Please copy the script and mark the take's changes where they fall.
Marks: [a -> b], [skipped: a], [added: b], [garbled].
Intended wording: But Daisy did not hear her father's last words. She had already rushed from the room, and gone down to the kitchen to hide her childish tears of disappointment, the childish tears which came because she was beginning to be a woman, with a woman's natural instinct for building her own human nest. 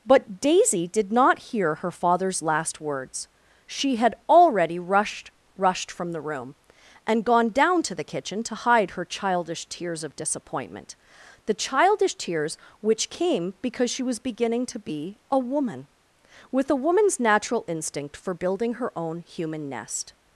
But Daisy did not hear her father's last words. She had already rushed [added: rushed] from the room, and gone down to the kitchen to hide her childish tears of disappointment, the childish tears which came because she was beginning to be a woman, with a woman's natural instinct for building her own human nest.